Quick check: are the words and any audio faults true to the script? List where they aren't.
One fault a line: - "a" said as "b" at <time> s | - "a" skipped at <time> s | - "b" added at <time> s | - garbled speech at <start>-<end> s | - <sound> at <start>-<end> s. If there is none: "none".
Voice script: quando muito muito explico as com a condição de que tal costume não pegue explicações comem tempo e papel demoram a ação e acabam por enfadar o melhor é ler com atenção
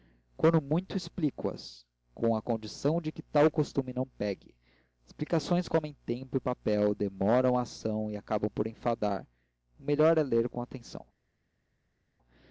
- "muito" skipped at 1.0 s